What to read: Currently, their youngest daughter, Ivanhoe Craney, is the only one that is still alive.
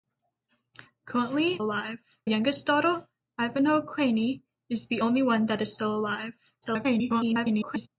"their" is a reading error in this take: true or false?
true